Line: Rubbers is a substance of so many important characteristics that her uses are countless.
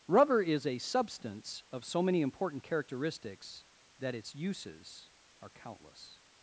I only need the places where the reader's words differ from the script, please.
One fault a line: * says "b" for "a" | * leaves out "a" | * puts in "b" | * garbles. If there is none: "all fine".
* says "Rubber" for "Rubbers"
* says "its" for "her"